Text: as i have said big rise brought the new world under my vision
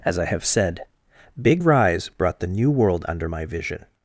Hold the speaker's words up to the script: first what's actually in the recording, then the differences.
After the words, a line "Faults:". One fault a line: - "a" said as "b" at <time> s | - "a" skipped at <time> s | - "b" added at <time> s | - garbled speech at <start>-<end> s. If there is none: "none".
as i have said big rise brought the new world under my vision
Faults:
none